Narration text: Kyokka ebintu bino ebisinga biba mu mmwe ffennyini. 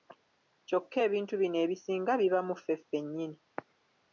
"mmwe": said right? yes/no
no